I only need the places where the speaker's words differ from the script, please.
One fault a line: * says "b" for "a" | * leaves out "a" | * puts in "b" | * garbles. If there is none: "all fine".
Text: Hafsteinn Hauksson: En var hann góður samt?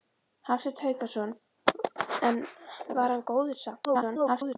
* garbles